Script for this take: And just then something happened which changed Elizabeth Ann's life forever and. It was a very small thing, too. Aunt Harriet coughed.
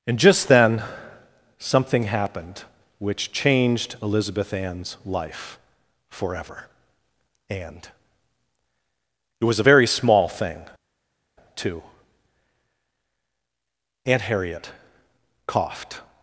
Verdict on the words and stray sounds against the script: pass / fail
pass